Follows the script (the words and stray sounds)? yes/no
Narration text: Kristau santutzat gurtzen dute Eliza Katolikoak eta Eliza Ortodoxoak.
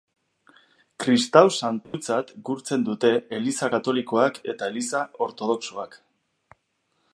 no